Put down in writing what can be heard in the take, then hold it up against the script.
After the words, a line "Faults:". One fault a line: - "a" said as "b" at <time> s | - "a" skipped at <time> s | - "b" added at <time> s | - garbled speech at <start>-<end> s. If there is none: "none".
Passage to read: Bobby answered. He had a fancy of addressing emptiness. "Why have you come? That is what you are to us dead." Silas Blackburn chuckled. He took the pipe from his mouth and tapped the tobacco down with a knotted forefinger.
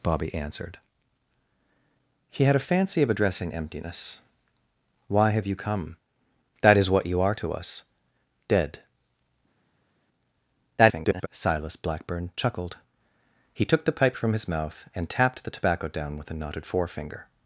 Bobby answered. He had a fancy of addressing emptiness. "Why have you come? That is what you are to us dead." [garbled] Silas Blackburn chuckled. He took the pipe from his mouth and tapped the tobacco down with a knotted forefinger.
Faults:
- garbled speech at 10.8-11.3 s